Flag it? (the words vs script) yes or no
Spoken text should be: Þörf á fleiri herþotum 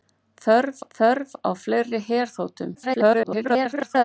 yes